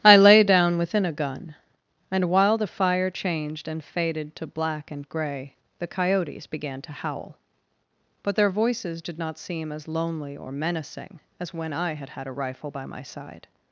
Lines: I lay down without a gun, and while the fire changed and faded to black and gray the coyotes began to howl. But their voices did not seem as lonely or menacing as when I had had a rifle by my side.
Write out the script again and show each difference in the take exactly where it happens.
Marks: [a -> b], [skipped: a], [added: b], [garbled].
I lay down [without -> within] a gun, and while the fire changed and faded to black and gray the coyotes began to howl. But their voices did not seem as lonely or menacing as when I had had a rifle by my side.